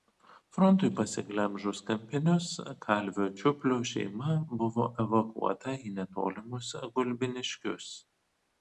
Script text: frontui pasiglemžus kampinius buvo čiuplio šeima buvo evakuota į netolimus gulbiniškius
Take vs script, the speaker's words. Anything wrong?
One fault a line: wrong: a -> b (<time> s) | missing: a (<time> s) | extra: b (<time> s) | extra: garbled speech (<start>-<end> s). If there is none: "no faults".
wrong: buvo -> kalvio (2.9 s)